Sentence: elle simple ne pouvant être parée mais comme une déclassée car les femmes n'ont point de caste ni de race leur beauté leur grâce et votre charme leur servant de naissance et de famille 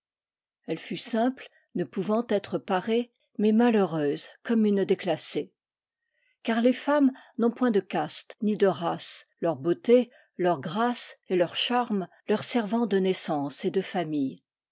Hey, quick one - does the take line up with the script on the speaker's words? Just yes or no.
no